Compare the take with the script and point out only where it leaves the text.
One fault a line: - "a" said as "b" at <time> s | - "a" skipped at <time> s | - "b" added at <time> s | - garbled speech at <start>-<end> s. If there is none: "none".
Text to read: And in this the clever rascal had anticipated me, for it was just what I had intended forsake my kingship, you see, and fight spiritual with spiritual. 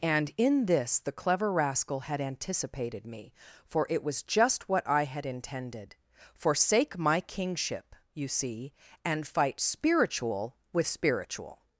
none